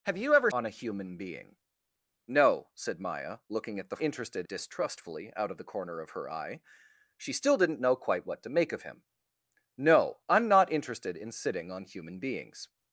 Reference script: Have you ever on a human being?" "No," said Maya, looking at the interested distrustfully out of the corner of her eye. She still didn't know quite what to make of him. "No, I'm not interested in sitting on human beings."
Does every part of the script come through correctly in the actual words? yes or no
yes